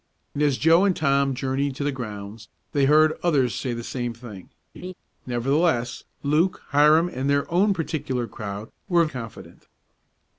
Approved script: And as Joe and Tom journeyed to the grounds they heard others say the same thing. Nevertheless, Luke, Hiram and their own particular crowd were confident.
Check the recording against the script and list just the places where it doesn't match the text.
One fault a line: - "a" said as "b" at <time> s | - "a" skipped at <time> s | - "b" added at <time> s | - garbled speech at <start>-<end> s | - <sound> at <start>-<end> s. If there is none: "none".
- laugh at 4.7-4.9 s